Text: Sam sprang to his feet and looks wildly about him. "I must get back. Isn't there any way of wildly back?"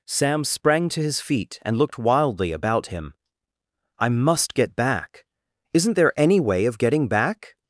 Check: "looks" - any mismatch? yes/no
yes